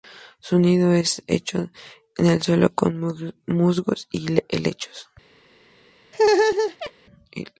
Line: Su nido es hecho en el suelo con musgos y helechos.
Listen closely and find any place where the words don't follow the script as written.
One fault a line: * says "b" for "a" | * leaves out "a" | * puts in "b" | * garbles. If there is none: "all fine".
all fine